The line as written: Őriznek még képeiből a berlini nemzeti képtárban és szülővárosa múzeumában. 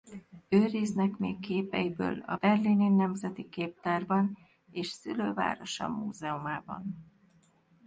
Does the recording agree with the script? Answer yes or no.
yes